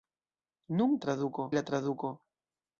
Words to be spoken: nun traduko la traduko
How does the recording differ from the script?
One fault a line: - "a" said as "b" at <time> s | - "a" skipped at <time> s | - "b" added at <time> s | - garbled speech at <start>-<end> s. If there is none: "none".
none